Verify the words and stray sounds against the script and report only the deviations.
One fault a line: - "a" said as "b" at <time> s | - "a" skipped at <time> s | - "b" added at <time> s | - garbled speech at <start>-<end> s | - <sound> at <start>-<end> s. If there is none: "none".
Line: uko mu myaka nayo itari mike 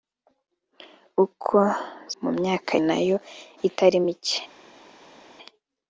none